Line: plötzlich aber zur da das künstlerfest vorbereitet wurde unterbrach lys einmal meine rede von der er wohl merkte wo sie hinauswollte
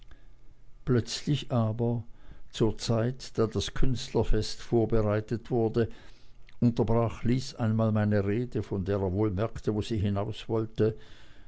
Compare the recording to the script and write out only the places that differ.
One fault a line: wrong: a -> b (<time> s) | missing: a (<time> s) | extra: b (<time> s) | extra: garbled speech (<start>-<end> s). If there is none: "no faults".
extra: zeit (2.8 s)